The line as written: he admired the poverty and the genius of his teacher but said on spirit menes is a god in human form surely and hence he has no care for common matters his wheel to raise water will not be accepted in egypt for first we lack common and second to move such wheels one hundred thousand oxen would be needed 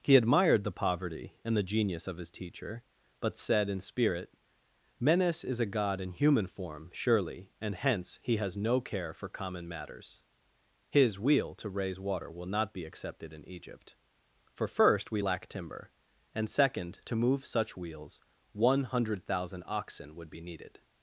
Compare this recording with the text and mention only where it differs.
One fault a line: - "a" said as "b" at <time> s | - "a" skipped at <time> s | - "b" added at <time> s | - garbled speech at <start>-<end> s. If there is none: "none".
- "on" said as "in" at 3.7 s
- "common" said as "timber" at 15.5 s